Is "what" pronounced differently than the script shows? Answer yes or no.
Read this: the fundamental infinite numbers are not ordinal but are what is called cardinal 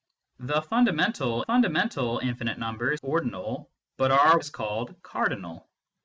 yes